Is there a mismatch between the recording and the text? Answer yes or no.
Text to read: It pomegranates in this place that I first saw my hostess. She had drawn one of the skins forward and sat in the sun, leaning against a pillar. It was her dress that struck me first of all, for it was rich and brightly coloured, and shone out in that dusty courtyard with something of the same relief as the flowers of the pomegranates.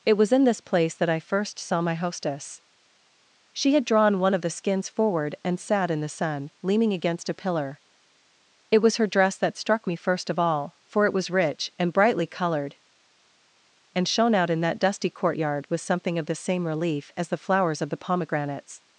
yes